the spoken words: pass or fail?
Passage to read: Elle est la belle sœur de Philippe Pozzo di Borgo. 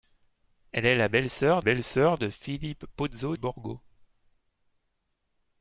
fail